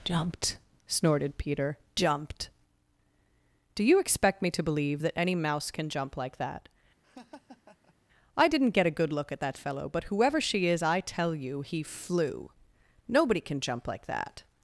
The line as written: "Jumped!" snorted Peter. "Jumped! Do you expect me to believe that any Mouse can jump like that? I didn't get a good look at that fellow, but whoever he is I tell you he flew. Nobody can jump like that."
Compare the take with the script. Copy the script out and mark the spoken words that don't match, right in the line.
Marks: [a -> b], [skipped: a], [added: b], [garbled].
"Jumped!" snorted Peter. "Jumped! Do you expect me to believe that any Mouse can jump like that? I didn't get a good look at that fellow, but whoever [he -> she] is I tell you he flew. Nobody can jump like that."